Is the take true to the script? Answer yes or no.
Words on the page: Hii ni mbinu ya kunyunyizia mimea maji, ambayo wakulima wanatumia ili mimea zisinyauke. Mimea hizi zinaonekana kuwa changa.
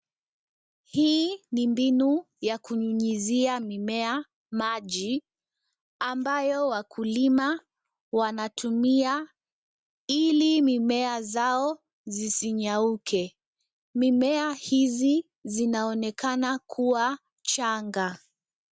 no